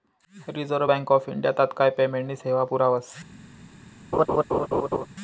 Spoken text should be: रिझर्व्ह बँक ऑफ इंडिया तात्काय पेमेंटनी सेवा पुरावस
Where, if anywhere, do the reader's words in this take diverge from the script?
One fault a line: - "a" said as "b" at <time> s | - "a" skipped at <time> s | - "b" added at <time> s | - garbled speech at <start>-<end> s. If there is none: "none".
none